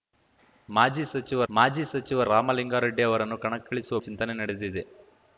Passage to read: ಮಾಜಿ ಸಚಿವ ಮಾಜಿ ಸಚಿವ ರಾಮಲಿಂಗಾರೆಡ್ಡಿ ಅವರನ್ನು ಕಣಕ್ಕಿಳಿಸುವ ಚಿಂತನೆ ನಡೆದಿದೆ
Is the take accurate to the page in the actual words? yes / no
yes